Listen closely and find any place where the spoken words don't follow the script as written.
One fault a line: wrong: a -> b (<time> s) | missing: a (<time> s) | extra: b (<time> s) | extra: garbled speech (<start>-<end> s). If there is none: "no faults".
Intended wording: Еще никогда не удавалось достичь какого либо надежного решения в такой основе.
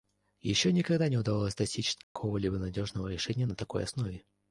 wrong: в -> на (3.4 s)